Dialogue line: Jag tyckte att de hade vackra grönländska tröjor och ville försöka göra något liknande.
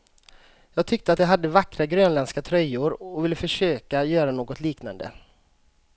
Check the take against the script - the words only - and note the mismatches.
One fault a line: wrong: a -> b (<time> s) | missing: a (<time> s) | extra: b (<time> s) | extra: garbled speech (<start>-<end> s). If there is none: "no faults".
no faults